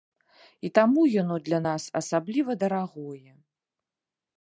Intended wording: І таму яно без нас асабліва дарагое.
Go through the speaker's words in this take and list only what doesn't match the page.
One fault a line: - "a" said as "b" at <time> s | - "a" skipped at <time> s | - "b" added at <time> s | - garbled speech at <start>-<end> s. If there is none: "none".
- "без" said as "для" at 1.5 s